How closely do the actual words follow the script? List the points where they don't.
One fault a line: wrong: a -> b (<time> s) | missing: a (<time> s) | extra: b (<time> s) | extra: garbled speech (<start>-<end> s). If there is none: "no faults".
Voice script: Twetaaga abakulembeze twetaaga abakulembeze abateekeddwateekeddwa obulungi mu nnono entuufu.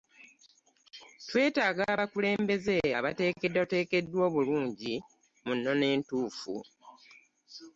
missing: twetaaga abakulembeze (2.8 s)